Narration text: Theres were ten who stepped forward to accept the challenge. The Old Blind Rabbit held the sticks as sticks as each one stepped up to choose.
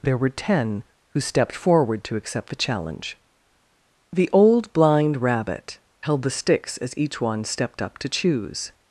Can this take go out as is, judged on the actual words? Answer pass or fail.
fail